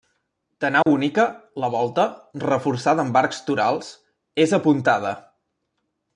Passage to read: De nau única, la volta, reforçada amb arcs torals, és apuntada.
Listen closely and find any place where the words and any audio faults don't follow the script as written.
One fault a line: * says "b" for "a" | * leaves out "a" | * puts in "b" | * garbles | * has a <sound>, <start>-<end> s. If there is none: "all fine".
* has a dropout, 0.8-0.9 s